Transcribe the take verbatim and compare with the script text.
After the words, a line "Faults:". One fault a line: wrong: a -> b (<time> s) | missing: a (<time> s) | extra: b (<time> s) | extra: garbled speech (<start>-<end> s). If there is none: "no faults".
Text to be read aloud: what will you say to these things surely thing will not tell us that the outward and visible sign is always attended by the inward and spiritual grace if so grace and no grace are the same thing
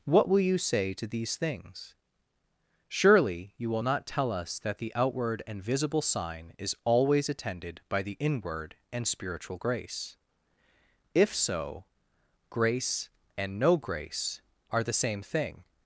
what will you say to these things surely you will not tell us that the outward and visible sign is always attended by the inward and spiritual grace if so grace and no grace are the same thing
Faults:
wrong: thing -> you (3.6 s)